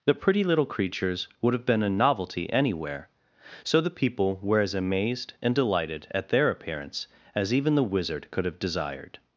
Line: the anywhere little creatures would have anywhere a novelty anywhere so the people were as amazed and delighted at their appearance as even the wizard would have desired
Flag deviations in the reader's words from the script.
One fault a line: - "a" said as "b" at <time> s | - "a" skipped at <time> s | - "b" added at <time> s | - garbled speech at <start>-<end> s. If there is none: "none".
- "anywhere" said as "pretty" at 0.1 s
- "anywhere" said as "been" at 1.6 s
- "would" said as "could" at 8.3 s